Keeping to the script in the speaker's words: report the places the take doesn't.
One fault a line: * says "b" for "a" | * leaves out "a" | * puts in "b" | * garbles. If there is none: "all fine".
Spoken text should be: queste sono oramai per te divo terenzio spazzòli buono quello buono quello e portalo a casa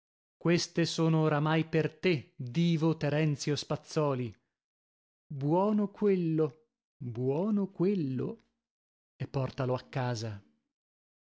all fine